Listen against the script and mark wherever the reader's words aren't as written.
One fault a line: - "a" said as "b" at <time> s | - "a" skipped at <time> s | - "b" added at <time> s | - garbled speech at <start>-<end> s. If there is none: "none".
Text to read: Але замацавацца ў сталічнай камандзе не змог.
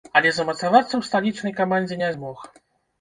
none